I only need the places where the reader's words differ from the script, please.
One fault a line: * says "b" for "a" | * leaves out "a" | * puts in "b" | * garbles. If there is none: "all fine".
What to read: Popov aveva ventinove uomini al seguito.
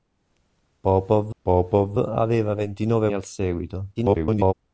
* puts in "popov"
* leaves out "uomini"
* garbles